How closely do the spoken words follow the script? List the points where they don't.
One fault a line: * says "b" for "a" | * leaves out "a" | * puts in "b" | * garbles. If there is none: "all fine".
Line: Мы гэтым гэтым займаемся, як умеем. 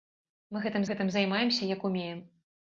all fine